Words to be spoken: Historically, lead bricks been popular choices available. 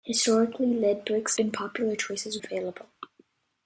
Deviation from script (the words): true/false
false